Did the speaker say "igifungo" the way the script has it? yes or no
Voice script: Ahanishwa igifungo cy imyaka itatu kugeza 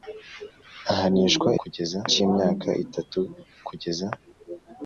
no